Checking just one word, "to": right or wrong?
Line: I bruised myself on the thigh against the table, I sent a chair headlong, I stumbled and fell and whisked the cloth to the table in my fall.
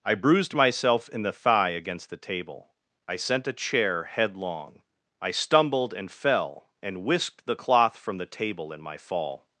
wrong